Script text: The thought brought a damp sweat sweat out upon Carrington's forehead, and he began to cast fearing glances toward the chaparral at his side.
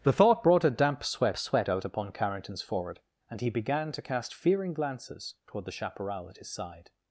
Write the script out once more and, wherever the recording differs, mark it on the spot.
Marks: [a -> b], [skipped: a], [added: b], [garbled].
The thought brought a damp sweat sweat out upon Carrington's forehead, and he began to cast fearing glances toward the chaparral at his side.